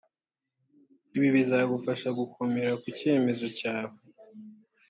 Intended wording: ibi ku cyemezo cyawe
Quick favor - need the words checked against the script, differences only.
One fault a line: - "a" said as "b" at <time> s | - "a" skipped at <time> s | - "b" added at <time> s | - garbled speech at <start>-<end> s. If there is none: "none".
- "bizagufasha gukomera" added at 1.4 s